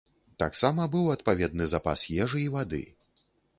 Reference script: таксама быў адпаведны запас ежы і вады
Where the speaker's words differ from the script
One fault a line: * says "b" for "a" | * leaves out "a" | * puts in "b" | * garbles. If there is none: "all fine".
all fine